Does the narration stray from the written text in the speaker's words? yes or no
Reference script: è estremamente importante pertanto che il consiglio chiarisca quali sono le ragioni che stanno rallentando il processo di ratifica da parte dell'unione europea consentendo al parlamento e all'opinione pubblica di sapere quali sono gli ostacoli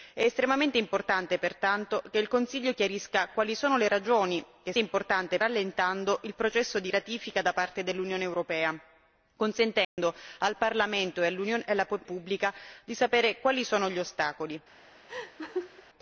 yes